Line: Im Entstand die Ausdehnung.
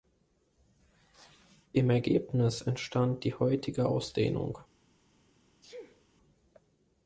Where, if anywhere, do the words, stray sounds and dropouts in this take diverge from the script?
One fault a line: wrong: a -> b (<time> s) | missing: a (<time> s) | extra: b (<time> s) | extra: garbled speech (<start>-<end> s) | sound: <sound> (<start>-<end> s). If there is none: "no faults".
extra: Ergebnis (1.9 s)
extra: heutige (3.3 s)
sound: sneeze (5.6-6.1 s)